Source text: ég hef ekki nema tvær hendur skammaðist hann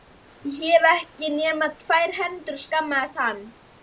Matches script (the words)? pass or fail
pass